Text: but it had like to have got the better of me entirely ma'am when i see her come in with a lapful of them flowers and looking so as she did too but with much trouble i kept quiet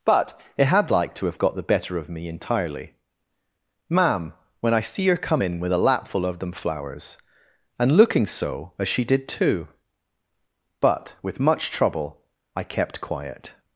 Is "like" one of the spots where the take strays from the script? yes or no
no